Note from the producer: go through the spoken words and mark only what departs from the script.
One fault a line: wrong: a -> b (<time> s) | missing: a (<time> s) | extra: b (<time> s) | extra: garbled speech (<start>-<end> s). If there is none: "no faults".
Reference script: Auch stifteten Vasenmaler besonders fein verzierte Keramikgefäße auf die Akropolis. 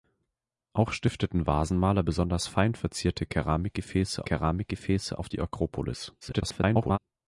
extra: Keramikgefäße (4.2 s)
extra: garbled speech (6.2-7.0 s)